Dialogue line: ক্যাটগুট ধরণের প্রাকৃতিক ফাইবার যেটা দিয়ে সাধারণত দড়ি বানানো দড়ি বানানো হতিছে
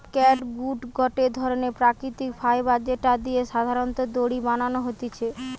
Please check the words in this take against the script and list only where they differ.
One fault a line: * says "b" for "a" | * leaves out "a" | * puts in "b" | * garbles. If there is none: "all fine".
* puts in "গটে"
* leaves out "দড়ি বানানো"